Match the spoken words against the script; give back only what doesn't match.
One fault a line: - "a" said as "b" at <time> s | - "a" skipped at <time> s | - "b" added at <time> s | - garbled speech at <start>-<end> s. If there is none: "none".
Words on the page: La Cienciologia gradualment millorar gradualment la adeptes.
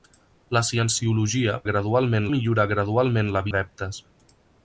none